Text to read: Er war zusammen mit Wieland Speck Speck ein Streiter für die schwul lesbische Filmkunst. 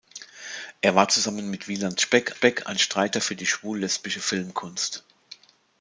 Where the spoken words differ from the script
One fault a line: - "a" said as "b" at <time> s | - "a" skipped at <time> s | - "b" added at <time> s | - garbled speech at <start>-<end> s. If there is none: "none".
none